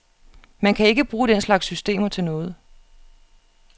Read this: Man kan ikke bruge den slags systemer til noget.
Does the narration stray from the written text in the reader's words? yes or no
no